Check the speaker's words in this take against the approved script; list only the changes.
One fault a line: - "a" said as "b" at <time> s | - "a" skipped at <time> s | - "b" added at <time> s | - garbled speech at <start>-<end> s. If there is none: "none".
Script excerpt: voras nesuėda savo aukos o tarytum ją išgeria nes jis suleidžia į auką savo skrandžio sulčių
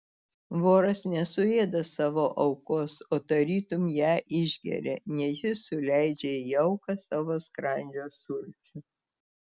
none